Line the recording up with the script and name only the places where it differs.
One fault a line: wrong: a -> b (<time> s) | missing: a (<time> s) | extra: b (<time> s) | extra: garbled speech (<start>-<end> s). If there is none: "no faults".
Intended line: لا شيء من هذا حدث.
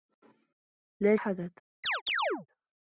missing: شيء من هذا (1.1 s)